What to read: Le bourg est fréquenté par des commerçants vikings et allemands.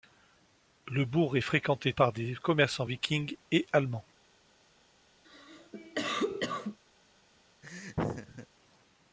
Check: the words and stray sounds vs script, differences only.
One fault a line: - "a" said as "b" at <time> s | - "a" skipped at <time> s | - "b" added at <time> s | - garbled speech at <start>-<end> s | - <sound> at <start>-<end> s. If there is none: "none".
- cough at 5.2-6.8 s
- laugh at 7.6-8.5 s